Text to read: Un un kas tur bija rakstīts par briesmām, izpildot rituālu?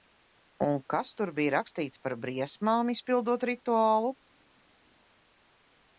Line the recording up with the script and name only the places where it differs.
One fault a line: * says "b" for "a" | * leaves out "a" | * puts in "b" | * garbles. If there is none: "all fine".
* leaves out "un"